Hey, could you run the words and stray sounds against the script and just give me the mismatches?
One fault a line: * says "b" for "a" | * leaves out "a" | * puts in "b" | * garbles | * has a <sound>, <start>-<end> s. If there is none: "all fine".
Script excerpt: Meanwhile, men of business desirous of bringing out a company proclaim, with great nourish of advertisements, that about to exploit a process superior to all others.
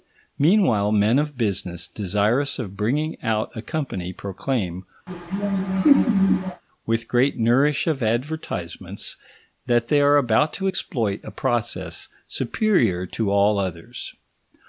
* has a laugh, 5.1-6.6 s
* puts in "they are"